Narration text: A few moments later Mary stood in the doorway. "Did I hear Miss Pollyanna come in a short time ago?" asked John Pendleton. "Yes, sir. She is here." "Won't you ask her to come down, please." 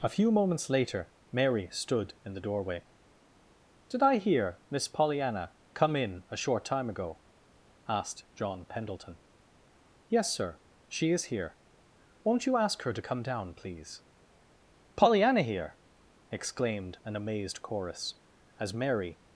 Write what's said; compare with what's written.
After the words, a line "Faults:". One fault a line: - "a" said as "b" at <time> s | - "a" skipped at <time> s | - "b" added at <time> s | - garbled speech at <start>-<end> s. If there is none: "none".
A few moments later Mary stood in the doorway. "Did I hear Miss Pollyanna come in a short time ago?" asked John Pendleton. "Yes, sir. She is here." "Won't you ask her to come down, please." "Pollyanna here!" exclaimed an amazed chorus, as Mary
Faults:
- "Pollyanna here exclaimed an amazed chorus as Mary" added at 14.9 s